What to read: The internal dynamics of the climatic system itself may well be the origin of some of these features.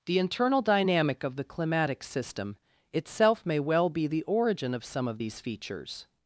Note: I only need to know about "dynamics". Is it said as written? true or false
false